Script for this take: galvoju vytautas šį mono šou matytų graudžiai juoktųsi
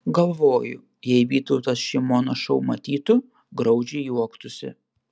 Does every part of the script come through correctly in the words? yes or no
no